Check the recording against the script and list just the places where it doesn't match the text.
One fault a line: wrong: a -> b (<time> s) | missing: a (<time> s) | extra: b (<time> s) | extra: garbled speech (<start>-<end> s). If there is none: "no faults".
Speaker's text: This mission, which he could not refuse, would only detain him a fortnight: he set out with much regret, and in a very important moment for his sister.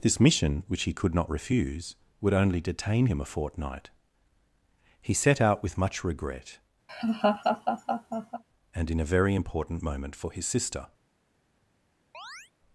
no faults